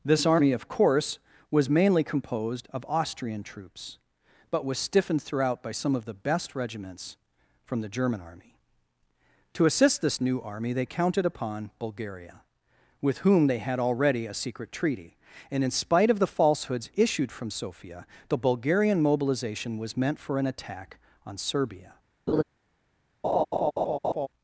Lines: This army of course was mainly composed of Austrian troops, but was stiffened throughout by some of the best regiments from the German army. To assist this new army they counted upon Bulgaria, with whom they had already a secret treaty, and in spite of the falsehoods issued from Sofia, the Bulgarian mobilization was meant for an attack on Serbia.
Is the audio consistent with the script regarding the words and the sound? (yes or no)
no